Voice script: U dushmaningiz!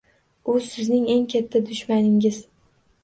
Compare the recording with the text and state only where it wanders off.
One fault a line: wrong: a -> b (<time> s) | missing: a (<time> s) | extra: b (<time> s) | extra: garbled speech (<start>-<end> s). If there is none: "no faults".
extra: sizning eng katta (0.7 s)